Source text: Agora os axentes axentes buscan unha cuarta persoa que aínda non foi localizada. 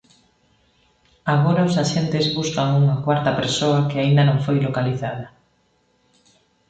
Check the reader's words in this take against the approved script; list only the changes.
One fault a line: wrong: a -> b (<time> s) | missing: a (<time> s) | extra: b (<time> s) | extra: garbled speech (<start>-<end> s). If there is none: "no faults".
missing: axentes (2.2 s)